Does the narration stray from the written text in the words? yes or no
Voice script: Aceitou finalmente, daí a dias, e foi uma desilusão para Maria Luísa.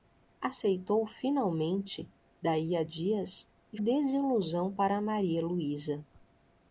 yes